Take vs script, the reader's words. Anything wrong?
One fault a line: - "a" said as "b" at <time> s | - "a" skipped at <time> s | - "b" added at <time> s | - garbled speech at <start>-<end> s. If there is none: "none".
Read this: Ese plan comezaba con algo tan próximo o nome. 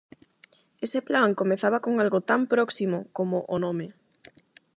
- "como" added at 3.1 s